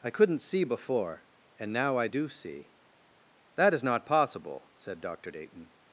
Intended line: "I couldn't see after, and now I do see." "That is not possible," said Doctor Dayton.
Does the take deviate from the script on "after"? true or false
true